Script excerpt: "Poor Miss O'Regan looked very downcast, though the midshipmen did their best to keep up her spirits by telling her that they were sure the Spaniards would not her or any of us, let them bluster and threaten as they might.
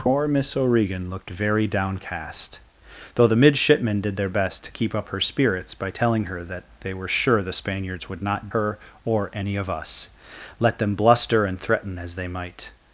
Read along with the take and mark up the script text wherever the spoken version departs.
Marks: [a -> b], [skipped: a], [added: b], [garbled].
"Poor Miss O'Regan looked very downcast, though the midshipmen did their best to keep up her spirits by telling her that they were sure the Spaniards would not her or any of us, let them bluster and threaten as they might.